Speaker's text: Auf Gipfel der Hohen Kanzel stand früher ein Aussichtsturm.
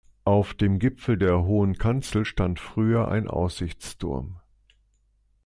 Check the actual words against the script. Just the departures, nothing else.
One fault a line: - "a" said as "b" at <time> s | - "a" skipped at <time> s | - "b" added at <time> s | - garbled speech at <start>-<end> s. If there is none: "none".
- "dem" added at 0.6 s